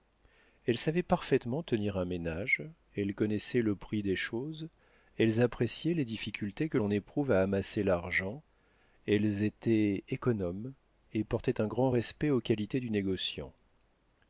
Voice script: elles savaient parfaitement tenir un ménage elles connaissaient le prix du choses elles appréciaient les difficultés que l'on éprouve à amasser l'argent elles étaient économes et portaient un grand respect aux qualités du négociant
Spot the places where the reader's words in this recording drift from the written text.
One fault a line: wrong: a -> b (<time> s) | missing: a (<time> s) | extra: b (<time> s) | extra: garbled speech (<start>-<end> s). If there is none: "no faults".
wrong: du -> des (4.0 s)